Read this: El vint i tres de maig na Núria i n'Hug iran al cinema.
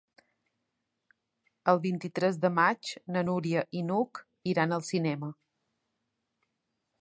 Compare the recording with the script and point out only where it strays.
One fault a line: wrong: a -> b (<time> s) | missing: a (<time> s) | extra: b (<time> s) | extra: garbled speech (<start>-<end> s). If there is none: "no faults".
no faults